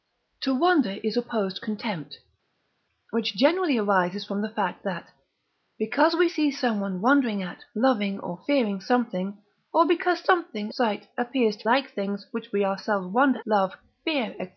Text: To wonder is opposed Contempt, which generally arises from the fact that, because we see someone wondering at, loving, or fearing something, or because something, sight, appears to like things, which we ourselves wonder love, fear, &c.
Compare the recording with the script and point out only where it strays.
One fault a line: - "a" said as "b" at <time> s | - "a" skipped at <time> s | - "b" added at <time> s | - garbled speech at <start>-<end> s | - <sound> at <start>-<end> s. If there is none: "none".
none